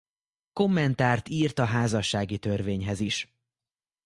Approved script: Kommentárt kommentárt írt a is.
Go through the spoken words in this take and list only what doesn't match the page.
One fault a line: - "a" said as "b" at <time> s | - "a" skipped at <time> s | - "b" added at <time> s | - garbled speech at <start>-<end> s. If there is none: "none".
- "kommentárt" skipped at 1.3 s
- "házassági törvényhez" added at 1.6 s